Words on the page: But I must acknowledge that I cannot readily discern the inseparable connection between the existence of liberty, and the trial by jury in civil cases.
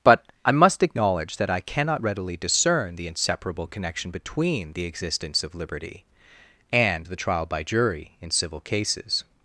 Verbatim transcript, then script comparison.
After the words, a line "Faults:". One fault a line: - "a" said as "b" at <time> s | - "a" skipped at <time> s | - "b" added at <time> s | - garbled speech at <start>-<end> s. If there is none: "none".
But I must acknowledge that I cannot readily discern the inseparable connection between the existence of liberty, and the trial by jury in civil cases.
Faults:
none